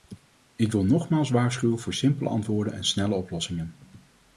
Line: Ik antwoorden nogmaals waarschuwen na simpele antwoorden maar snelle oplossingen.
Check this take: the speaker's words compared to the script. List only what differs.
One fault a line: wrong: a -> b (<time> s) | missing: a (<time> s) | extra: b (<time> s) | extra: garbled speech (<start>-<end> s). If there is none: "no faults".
wrong: antwoorden -> wil (0.7 s)
wrong: na -> voor (1.8 s)
wrong: maar -> en (2.7 s)